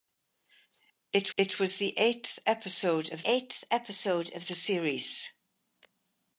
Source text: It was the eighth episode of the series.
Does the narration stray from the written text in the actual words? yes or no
yes